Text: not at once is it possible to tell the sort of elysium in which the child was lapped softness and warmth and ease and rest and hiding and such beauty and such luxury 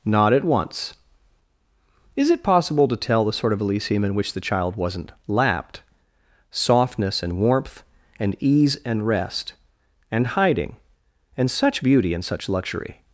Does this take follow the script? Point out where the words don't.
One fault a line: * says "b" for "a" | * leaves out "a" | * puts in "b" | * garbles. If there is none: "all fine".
* says "wasn't" for "was"